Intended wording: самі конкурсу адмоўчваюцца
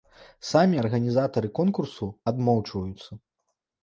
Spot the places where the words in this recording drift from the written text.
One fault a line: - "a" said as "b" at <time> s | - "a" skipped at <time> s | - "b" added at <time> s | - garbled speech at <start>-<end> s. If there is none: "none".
- "арганізатары" added at 0.8 s